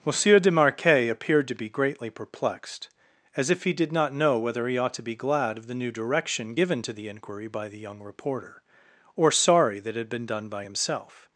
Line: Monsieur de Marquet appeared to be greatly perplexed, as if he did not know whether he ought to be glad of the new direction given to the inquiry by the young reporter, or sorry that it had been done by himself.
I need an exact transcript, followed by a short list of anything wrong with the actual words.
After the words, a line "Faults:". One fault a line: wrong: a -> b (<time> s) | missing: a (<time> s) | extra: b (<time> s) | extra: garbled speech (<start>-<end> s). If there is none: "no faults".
Monsieur de Marquet appeared to be greatly perplexed, as if he did not know whether he ought to be glad of the new direction given to the inquiry by the young reporter, or sorry that it had been done by himself.
Faults:
no faults